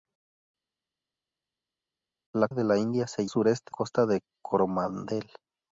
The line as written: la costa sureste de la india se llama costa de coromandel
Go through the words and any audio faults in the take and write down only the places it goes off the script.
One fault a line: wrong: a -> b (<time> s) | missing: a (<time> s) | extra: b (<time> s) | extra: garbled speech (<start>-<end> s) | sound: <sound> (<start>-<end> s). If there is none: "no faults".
missing: costa sureste (2.5 s)
wrong: llama -> sureste (3.3 s)